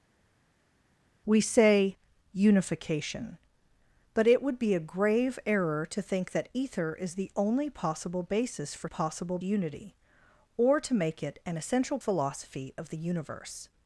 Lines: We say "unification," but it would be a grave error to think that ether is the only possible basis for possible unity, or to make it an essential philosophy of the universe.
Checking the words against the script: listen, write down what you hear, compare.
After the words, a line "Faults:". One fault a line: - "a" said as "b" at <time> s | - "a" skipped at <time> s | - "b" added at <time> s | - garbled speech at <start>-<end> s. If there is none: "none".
We say "unification," but it would be a grave error to think that ether is the only possible basis for possible unity, or to make it an essential philosophy of the universe.
Faults:
none